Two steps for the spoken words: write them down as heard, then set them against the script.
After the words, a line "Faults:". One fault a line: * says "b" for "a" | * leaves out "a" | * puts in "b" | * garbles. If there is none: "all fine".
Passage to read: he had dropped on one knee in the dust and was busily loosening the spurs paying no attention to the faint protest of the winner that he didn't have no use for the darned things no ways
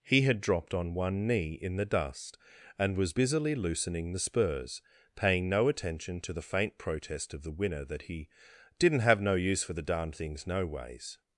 he had dropped on one knee in the dust and was busily loosening the spurs paying no attention to the faint protest of the winner that he didn't have no use for the darned things no ways
Faults:
all fine